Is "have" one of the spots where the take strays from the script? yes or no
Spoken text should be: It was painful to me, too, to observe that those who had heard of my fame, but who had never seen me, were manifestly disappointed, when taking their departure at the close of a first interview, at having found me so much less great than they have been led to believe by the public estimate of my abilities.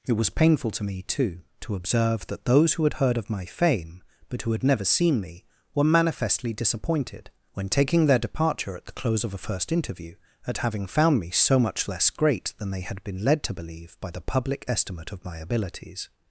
yes